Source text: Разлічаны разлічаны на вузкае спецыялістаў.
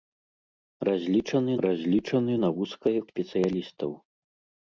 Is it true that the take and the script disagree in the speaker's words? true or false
false